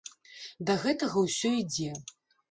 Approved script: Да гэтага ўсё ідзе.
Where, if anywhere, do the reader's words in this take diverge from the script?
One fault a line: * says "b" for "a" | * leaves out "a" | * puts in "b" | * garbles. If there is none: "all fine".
all fine